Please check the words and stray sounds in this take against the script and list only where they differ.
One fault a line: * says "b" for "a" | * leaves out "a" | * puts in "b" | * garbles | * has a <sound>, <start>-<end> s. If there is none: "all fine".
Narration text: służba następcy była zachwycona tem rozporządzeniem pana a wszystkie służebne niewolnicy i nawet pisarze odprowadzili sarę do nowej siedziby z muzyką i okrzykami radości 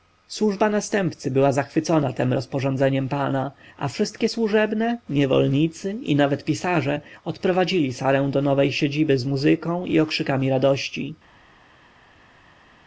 all fine